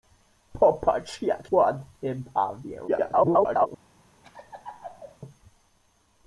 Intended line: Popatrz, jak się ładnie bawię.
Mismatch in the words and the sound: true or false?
true